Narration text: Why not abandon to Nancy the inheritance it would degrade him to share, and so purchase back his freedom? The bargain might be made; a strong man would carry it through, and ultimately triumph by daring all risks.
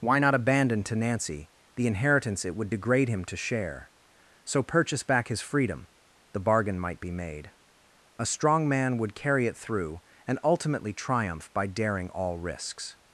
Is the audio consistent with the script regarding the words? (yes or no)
no